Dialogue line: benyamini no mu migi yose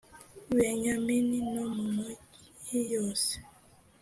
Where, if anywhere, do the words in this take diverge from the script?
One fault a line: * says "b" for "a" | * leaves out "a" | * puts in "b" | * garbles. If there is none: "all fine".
all fine